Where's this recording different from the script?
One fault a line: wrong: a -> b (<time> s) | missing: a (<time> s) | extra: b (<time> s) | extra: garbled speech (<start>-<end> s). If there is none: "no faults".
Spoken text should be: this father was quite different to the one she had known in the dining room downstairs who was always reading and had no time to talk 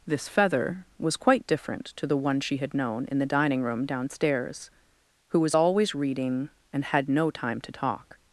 wrong: father -> feather (0.3 s)